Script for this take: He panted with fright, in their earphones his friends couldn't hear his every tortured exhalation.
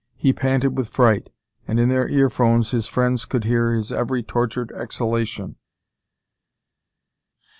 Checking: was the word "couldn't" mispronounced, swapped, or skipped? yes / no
yes